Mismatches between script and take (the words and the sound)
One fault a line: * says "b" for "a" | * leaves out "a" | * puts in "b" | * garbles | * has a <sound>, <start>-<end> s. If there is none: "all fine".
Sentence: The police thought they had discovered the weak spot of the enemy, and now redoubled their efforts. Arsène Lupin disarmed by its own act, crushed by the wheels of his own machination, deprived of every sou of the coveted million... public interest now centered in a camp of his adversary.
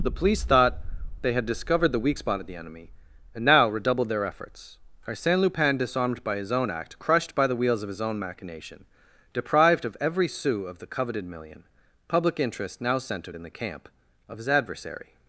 * says "his" for "its"
* says "the" for "a"